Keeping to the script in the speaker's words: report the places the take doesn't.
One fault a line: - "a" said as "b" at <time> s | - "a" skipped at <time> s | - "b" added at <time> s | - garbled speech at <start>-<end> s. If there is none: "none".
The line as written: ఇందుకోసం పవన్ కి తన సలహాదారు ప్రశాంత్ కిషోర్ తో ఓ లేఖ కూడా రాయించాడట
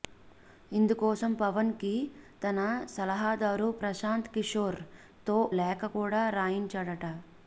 - "ఓ" skipped at 5.4 s